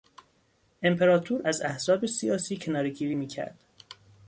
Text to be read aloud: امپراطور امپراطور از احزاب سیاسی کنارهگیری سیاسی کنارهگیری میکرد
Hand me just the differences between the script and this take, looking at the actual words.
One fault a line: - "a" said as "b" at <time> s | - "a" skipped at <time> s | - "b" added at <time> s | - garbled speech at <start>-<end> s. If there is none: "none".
- "امپراطور" skipped at 1.4 s
- "سیاسی کنارهگیری" skipped at 3.2 s